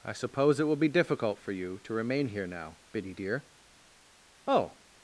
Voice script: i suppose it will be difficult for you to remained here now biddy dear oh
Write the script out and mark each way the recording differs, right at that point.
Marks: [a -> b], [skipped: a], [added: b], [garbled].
i suppose it will be difficult for you to [remained -> remain] here now biddy dear oh